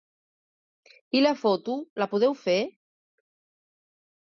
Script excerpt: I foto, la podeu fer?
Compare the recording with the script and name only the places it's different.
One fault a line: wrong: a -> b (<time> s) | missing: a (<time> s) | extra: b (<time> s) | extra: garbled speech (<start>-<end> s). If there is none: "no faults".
extra: la (1.2 s)